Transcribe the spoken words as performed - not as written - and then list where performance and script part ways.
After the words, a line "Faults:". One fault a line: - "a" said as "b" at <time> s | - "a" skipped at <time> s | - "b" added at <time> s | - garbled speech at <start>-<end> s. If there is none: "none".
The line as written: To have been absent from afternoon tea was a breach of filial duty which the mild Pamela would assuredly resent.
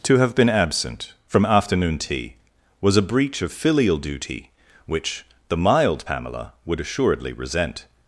To have been absent from afternoon tea was a breach of filial duty which the mild Pamela would assuredly resent.
Faults:
none